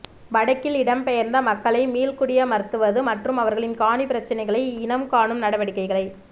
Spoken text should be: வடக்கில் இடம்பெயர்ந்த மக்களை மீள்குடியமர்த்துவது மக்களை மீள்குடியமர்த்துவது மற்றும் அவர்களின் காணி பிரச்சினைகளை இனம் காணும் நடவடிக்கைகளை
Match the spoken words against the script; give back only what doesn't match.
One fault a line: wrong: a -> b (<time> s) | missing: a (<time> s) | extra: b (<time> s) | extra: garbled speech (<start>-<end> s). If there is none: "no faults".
missing: மக்களை மீள்குடியமர்த்துவது (3.0 s)